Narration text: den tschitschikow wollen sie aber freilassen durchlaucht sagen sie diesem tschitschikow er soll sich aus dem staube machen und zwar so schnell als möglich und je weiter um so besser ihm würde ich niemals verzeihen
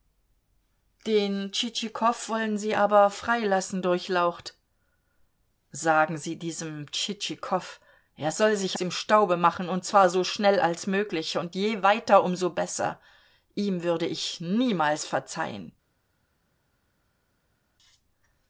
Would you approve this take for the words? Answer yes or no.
no